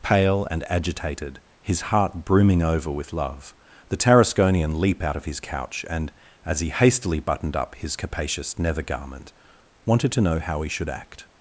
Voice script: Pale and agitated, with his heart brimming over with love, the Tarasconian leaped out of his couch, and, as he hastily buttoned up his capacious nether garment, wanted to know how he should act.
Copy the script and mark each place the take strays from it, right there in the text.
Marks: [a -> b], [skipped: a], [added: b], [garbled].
Pale and agitated, [skipped: with] his heart brimming over with love, the Tarasconian [leaped -> leap] out of his couch, and, as he hastily buttoned up his capacious nether garment, wanted to know how he should act.